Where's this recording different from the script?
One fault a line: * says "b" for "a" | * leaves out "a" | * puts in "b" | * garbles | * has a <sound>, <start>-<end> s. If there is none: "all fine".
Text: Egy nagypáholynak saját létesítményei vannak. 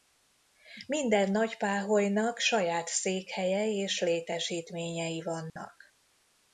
* says "Minden" for "Egy"
* puts in "székhelye és"
* has a dropout, 5.5-5.6 s